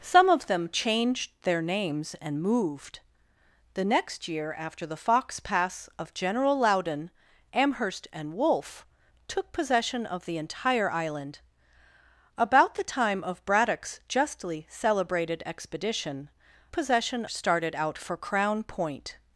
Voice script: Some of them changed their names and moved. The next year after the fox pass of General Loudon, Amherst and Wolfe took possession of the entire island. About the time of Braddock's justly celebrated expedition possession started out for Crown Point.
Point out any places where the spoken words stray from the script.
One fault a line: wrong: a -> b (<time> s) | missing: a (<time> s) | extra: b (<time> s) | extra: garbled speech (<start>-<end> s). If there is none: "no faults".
no faults